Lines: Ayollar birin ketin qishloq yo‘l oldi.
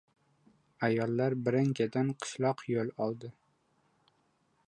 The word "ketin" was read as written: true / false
true